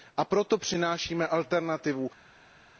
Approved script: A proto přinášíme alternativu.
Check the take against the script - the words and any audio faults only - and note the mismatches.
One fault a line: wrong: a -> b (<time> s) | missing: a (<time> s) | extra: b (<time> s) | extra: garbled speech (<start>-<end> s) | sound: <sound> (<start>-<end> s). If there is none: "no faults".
no faults